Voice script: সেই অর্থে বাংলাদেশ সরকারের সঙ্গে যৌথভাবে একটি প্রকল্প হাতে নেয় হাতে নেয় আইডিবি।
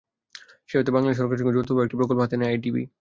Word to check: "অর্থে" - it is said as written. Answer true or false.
true